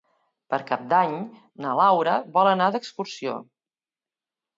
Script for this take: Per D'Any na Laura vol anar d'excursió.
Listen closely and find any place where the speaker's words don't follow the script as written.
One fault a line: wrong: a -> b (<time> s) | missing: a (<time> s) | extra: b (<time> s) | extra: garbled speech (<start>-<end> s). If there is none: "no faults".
extra: Cap (0.7 s)